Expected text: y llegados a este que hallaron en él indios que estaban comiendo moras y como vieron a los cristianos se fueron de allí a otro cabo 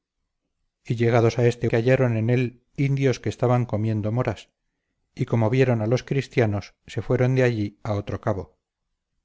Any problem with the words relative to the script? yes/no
no